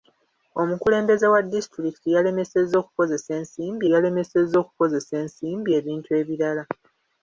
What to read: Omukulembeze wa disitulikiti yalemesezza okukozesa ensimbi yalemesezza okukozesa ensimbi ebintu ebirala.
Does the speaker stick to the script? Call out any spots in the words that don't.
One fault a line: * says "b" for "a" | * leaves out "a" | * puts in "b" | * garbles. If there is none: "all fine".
all fine